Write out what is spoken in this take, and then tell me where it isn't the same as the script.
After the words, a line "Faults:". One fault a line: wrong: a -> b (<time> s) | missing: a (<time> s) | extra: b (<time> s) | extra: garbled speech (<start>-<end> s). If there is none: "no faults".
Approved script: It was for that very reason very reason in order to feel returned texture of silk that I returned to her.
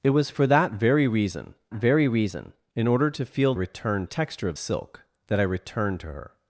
It was for that very reason very reason in order to feel returned texture of silk that I returned to her.
Faults:
no faults